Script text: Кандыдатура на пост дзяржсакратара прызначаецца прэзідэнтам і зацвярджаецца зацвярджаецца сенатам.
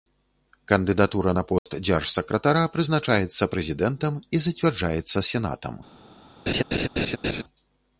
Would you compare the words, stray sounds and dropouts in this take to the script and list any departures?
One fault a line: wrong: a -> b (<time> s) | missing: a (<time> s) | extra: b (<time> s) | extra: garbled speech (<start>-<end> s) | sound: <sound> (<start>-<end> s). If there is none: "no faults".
sound: dropout (1.6-1.7 s)
missing: зацвярджаецца (5.3 s)
sound: laugh (6.5-7.4 s)